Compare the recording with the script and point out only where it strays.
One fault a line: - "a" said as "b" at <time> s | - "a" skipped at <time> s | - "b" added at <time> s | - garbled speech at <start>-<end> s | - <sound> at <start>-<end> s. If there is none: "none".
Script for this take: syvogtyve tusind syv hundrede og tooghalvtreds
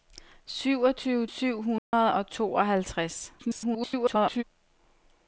- "tusind" skipped at 1.3 s
- dropout at 1.8-1.9 s
- garbled speech at 3.4-4.4 s